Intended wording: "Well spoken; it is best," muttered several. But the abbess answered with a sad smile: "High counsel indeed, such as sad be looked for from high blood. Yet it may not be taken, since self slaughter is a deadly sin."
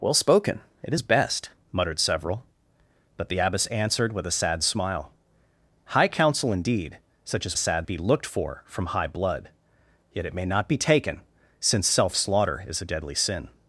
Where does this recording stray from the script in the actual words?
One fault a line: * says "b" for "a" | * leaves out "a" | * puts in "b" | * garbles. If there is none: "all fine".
all fine